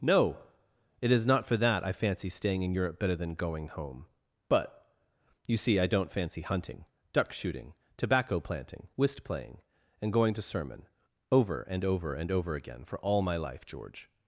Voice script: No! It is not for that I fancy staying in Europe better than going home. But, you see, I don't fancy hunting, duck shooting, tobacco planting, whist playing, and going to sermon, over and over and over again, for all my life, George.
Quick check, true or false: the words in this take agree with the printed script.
true